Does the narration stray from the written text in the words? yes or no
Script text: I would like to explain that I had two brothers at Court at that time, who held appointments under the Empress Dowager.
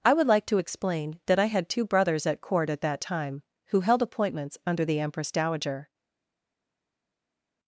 no